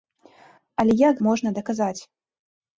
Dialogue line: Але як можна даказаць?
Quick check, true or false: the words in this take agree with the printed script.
true